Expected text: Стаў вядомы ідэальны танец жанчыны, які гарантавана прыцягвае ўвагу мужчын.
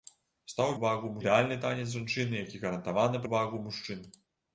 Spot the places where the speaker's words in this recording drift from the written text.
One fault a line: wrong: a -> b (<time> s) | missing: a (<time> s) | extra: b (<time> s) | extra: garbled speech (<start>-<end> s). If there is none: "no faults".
wrong: вядомы -> ўвагу (0.8 s)
missing: прыцягвае (3.3 s)